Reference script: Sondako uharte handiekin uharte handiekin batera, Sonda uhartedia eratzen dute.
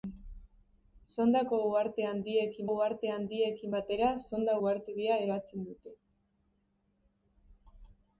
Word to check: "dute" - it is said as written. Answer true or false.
true